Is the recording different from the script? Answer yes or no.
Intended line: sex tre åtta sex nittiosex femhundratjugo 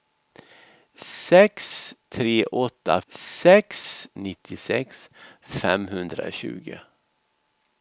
no